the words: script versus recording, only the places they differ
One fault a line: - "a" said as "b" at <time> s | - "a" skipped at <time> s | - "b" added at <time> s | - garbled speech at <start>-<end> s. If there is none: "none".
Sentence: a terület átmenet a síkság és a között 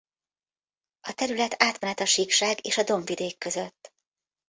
- "dombvidék" added at 2.8 s